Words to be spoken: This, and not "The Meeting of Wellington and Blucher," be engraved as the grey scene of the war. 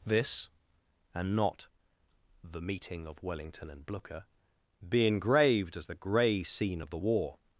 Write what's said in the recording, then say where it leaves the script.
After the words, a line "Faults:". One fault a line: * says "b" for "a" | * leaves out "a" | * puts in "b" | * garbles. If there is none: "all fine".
This, and not "The Meeting of Wellington and Blucher," be engraved as the grey scene of the war.
Faults:
all fine